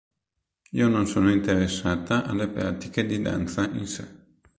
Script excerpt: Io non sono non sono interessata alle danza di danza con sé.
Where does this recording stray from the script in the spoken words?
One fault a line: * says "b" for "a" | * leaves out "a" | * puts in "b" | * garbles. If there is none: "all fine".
* leaves out "non sono"
* says "pratiche" for "danza"
* says "in" for "con"